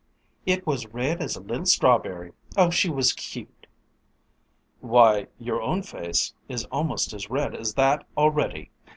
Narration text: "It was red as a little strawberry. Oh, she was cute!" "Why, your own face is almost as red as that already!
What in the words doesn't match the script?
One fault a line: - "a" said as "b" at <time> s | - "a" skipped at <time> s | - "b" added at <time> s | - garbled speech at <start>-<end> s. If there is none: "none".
none